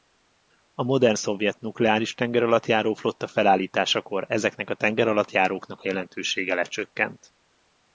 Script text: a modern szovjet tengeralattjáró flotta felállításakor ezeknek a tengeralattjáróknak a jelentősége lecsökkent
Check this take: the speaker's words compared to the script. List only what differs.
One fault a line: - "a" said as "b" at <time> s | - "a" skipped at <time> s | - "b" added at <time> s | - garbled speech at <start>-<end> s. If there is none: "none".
- "nukleáris" added at 1.6 s